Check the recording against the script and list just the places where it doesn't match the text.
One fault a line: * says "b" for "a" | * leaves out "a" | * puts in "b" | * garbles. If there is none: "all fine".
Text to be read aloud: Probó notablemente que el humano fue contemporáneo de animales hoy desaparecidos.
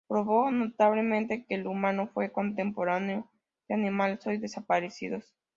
all fine